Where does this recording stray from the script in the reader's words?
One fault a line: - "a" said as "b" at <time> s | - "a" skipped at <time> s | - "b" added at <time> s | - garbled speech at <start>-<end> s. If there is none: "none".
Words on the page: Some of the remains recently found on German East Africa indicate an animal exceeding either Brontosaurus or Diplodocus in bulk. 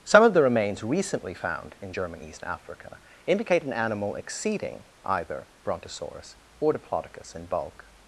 - "on" said as "in" at 1.8 s